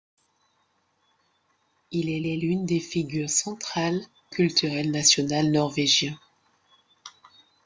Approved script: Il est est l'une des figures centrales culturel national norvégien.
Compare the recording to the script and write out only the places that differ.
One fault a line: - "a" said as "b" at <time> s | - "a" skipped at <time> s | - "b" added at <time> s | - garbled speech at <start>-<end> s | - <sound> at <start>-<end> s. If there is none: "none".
none